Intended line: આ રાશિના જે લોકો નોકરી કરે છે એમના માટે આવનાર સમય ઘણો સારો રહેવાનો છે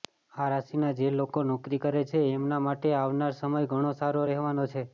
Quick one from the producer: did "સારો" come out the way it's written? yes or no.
yes